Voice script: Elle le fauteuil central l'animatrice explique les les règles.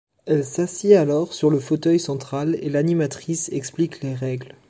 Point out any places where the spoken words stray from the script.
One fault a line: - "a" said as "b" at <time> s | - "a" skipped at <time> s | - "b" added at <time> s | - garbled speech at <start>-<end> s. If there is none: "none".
- "s'assied alors sur" added at 0.4 s
- "et" added at 2.6 s
- "les" skipped at 4.2 s